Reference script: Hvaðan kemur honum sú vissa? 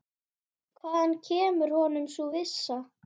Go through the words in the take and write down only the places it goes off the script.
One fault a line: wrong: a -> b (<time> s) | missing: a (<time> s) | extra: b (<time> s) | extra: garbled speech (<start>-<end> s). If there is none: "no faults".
no faults